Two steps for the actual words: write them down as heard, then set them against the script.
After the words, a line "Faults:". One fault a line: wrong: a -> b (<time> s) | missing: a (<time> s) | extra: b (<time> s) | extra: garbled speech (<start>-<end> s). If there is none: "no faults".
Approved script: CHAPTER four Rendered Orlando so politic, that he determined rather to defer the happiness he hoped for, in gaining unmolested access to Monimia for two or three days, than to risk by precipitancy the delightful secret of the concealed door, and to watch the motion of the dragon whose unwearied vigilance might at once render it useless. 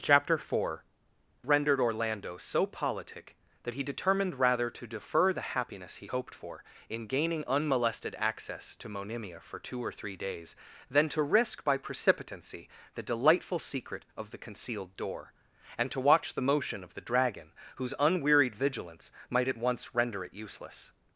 CHAPTER four Rendered Orlando so politic, that he determined rather to defer the happiness he hoped for, in gaining unmolested access to Monimia for two or three days, than to risk by precipitancy the delightful secret of the concealed door, and to watch the motion of the dragon whose unwearied vigilance might at once render it useless.
Faults:
no faults